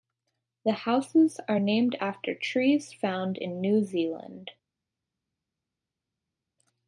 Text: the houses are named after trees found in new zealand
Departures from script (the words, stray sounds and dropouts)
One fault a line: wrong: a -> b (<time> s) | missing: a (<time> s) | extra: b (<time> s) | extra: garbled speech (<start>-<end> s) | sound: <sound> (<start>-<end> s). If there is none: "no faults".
no faults